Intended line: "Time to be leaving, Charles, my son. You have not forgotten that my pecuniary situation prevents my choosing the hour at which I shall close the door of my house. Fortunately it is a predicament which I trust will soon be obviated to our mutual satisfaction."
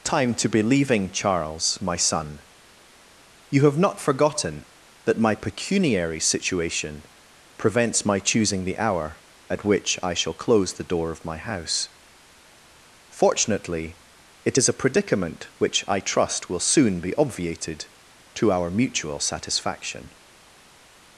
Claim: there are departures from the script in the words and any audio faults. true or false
false